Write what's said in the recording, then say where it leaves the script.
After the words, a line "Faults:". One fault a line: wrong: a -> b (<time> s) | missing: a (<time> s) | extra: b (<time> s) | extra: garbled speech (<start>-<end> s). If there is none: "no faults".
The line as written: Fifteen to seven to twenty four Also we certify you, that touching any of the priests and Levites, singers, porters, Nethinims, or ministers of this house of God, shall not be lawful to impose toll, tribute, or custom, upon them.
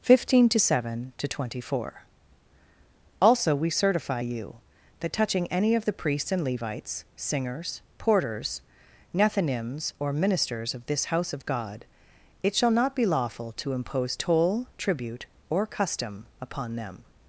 Fifteen to seven to twenty four Also we certify you, that touching any of the priests and Levites, singers, porters, Nethinims, or ministers of this house of God, it shall not be lawful to impose toll, tribute, or custom, upon them.
Faults:
extra: it (12.4 s)